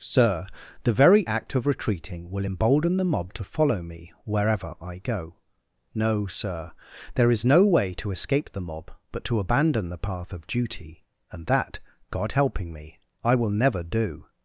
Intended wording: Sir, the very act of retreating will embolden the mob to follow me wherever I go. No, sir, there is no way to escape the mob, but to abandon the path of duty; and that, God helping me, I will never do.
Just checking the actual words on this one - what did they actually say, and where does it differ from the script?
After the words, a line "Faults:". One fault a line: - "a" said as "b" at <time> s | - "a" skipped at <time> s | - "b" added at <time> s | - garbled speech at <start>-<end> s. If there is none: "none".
Sir, the very act of retreating will embolden the mob to follow me wherever I go. No, sir, there is no way to escape the mob, but to abandon the path of duty; and that, God helping me, I will never do.
Faults:
none